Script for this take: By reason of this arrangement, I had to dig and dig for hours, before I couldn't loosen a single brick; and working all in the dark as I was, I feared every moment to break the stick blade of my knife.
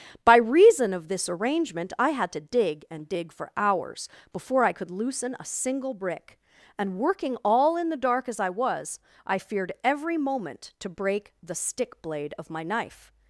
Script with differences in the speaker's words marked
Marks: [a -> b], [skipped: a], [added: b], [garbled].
By reason of this arrangement, I had to dig and dig for hours, before I [couldn't -> could] loosen a single brick; and working all in the dark as I was, I feared every moment to break the stick blade of my knife.